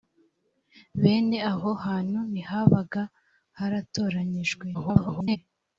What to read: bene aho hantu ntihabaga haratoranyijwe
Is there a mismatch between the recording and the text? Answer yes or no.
yes